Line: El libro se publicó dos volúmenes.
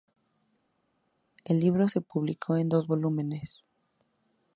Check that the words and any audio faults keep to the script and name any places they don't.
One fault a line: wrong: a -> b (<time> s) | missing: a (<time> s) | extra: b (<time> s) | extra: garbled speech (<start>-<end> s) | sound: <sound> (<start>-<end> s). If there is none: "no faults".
extra: en (2.6 s)